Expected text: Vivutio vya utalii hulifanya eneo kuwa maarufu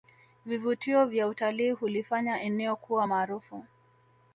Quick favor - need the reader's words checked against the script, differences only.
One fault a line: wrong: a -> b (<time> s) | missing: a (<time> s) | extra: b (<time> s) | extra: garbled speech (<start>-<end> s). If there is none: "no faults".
no faults